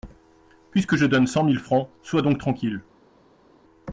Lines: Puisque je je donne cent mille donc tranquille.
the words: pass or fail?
fail